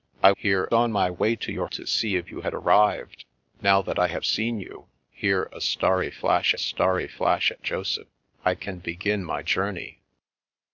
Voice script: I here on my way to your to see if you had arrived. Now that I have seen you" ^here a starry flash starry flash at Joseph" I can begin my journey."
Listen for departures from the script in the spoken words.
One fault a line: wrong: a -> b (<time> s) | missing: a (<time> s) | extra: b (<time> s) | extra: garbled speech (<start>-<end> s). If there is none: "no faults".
no faults